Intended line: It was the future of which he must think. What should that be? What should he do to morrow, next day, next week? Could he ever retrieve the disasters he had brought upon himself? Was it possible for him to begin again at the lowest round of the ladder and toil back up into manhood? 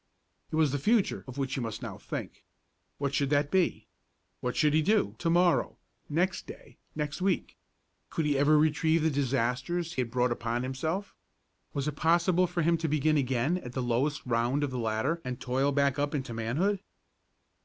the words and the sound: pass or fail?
fail